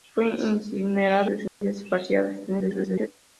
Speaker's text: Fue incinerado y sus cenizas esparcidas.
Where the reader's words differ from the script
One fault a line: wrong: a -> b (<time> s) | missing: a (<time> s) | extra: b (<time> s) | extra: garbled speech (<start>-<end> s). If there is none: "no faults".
missing: y (1.3 s)
extra: garbled speech (2.5-3.1 s)